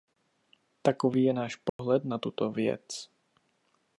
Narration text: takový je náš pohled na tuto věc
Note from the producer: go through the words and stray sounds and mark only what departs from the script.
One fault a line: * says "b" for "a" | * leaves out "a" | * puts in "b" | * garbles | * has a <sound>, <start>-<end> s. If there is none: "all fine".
* has a dropout, 1.7-1.8 s